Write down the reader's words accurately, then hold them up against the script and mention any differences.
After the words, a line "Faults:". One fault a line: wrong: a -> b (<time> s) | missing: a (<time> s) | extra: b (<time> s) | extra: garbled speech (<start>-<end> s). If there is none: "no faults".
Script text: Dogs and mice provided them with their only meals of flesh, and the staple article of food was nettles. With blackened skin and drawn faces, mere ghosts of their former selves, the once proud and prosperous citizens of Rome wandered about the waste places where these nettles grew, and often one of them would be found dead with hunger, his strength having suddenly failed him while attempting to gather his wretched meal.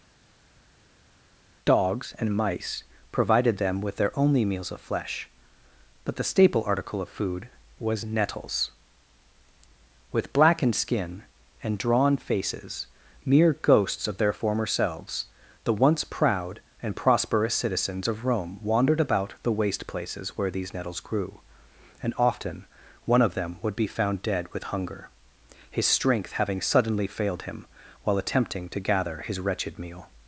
Dogs and mice provided them with their only meals of flesh, but the staple article of food was nettles. With blackened skin and drawn faces, mere ghosts of their former selves, the once proud and prosperous citizens of Rome wandered about the waste places where these nettles grew, and often one of them would be found dead with hunger, his strength having suddenly failed him while attempting to gather his wretched meal.
Faults:
wrong: and -> but (6.0 s)